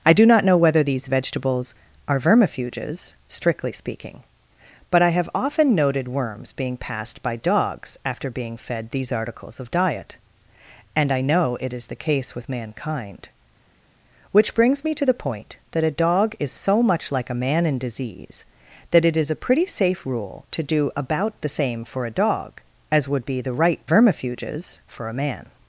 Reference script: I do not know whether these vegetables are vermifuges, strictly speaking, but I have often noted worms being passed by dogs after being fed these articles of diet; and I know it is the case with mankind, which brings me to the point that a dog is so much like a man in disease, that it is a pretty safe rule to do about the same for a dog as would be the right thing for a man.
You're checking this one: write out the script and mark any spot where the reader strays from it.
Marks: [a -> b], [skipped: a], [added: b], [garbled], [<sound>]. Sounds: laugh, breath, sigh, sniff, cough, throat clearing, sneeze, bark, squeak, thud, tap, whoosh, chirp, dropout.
I do not know whether these vegetables are vermifuges, strictly speaking, but I have often noted worms being passed by dogs after being fed these articles of diet; and I know it is the case with mankind, which brings me to the point that a dog is so much like a man in disease, that it is a pretty safe rule to do about the same for a dog as would be the right [thing -> vermifuges] for a man.